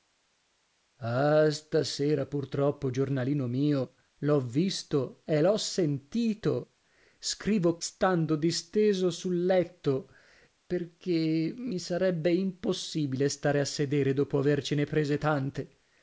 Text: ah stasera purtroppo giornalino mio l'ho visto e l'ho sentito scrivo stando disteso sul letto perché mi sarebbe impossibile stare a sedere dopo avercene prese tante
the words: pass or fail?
pass